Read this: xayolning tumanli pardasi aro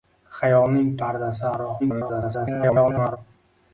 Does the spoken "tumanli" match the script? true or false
false